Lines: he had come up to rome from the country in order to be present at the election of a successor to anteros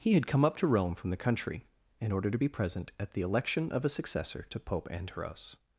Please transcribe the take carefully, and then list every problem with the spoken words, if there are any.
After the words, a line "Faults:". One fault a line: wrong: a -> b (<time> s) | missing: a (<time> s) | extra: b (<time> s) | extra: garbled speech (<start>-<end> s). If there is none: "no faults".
he had come up to rome from the country in order to be present at the election of a successor to pope anteros
Faults:
extra: pope (4.6 s)